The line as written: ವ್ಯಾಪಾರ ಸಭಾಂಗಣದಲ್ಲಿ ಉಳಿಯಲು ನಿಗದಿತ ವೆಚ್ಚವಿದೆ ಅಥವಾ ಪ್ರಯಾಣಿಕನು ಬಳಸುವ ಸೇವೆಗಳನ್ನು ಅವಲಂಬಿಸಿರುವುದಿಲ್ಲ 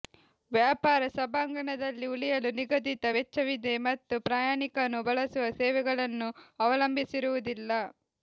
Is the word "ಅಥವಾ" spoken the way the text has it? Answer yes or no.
no